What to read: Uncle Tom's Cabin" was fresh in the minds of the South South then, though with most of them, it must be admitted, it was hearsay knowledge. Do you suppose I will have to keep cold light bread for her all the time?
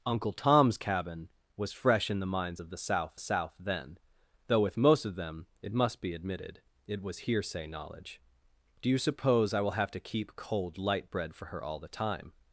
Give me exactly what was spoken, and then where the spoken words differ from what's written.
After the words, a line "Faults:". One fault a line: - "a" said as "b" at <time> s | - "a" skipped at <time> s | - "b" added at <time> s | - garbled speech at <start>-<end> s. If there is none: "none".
Uncle Tom's Cabin" was fresh in the minds of the South South then, though with most of them, it must be admitted, it was hearsay knowledge. Do you suppose I will have to keep cold light bread for her all the time?
Faults:
none